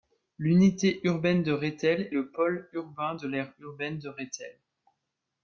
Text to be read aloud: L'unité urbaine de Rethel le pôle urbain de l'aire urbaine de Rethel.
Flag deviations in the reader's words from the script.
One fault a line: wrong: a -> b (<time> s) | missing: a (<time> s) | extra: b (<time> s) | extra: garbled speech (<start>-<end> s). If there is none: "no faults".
no faults